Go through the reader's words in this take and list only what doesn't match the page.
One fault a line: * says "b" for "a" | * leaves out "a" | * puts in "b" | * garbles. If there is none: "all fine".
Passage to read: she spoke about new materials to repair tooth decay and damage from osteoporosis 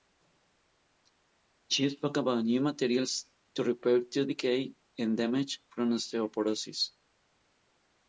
all fine